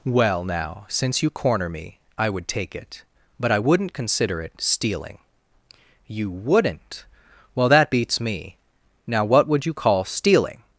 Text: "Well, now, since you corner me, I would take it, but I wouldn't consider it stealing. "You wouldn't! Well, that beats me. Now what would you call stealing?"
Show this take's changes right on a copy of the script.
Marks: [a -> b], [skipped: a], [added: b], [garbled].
"Well, now, since you corner me, I would take it, but I wouldn't consider it stealing. "You wouldn't! Well, that beats me. Now what would you call stealing?"